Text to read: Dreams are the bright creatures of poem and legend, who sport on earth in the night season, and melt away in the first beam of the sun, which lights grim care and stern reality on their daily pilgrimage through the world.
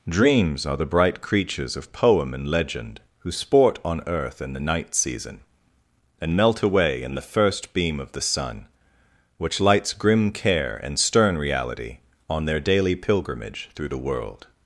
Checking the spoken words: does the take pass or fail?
pass